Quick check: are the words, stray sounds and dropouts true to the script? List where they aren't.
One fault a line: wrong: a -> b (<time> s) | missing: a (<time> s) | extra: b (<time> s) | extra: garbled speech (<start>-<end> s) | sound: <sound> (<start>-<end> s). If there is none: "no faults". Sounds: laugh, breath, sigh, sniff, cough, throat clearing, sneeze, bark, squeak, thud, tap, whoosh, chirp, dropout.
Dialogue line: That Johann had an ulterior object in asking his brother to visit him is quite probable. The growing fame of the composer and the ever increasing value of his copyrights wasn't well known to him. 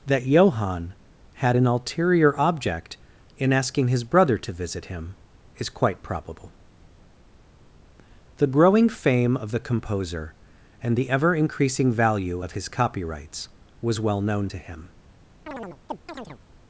wrong: wasn't -> was (13.8 s)
sound: chirp (15.5-16.4 s)